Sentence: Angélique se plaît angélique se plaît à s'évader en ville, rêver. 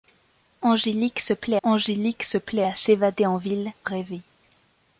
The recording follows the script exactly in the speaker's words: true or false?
true